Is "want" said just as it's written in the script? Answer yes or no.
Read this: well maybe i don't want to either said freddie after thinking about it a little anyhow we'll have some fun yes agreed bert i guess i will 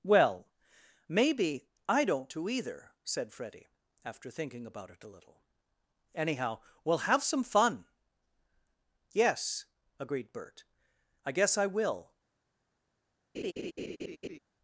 no